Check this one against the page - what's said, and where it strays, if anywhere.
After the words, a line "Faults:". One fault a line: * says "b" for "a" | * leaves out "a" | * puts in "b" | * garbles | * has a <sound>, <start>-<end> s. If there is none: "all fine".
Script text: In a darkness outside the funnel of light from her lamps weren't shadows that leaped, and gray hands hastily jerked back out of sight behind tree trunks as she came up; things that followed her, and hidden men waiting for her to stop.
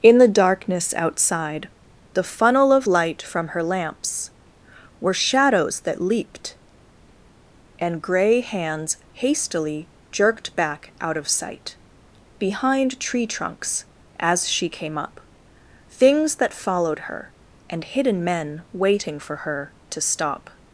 In the darkness outside the funnel of light from her lamps were shadows that leaped, and gray hands hastily jerked back out of sight behind tree trunks as she came up; things that followed her, and hidden men waiting for her to stop.
Faults:
* says "the" for "a"
* says "were" for "weren't"